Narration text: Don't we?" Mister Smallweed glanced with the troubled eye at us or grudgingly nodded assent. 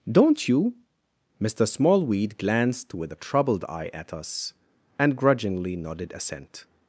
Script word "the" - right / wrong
wrong